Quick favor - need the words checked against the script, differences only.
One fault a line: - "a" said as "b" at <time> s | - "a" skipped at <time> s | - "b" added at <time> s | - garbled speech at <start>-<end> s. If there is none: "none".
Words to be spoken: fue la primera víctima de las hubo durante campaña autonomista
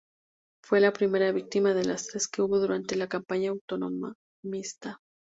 - "tres que" added at 2.1 s
- "la" added at 3.0 s